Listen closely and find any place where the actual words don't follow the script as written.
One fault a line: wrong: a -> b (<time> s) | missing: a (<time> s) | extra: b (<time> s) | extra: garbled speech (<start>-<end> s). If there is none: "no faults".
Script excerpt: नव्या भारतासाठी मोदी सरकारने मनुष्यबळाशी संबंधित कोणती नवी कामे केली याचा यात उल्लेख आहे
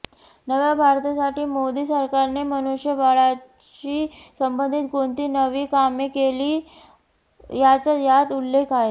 no faults